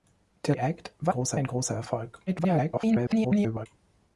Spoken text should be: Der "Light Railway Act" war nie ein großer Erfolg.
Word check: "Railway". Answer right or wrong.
wrong